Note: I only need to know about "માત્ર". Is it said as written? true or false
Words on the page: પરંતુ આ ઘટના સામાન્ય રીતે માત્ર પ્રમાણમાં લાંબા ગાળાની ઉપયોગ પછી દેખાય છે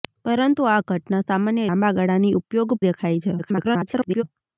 false